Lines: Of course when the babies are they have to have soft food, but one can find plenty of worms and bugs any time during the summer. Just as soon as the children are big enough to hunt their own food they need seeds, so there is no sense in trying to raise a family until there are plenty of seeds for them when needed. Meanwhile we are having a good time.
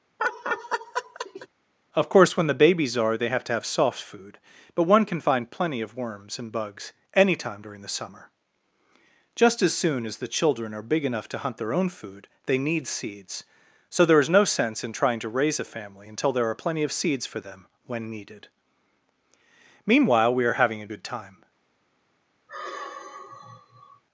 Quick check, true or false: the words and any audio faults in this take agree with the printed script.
false